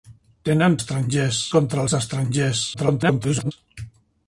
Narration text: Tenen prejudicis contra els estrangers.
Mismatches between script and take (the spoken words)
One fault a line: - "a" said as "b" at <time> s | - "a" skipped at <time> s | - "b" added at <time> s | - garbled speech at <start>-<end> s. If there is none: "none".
- "prejudicis" said as "estrangers" at 0.8 s
- garbled speech at 2.7-3.5 s